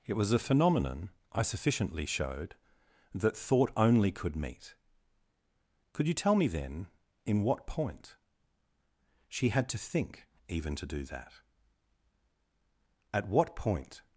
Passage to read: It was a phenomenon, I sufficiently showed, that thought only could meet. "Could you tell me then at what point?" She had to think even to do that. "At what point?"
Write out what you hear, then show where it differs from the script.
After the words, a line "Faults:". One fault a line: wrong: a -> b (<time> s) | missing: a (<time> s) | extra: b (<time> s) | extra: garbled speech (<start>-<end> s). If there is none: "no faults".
It was a phenomenon, I sufficiently showed, that thought only could meet. "Could you tell me then in what point?" She had to think even to do that. "At what point?"
Faults:
wrong: at -> in (7.3 s)